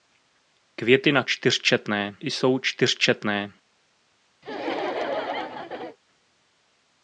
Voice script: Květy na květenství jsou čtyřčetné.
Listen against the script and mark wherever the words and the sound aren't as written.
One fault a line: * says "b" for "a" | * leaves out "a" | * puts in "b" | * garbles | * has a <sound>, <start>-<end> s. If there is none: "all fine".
* says "čtyřčetné" for "květenství"
* has a laugh, 4.4-6.0 s